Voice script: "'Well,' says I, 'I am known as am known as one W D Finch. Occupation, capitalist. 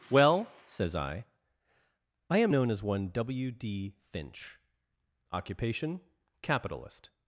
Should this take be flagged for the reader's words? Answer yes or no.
yes